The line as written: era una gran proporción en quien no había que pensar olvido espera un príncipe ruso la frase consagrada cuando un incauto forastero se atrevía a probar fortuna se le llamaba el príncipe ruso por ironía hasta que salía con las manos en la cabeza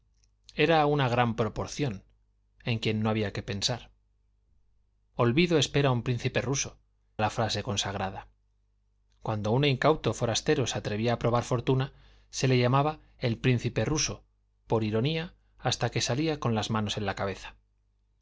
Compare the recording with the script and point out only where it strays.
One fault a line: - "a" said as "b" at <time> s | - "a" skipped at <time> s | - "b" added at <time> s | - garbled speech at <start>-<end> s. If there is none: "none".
none